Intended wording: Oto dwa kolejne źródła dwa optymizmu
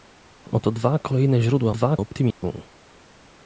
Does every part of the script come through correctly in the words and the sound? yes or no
no